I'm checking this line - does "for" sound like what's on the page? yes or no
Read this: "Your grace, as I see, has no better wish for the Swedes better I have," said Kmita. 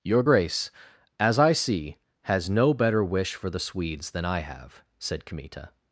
yes